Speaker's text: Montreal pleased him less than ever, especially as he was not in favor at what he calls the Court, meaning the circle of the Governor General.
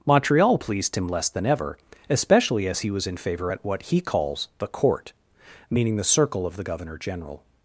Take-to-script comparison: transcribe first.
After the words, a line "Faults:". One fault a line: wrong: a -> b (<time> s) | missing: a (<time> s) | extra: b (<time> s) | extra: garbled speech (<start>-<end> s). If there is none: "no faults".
Montreal pleased him less than ever, especially as he was in favor at what he calls the Court, meaning the circle of the Governor General.
Faults:
missing: not (3.1 s)